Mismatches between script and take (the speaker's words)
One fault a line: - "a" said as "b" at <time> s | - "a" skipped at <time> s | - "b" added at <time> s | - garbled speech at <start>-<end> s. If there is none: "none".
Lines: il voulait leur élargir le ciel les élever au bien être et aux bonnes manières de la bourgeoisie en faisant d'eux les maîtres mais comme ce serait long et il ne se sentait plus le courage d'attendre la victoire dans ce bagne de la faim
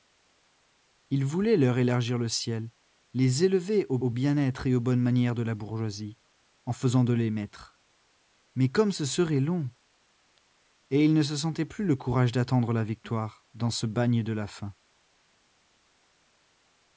- "au" added at 4.0 s